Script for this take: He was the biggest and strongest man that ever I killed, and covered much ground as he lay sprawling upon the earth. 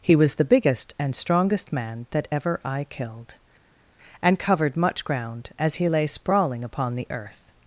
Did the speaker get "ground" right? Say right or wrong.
right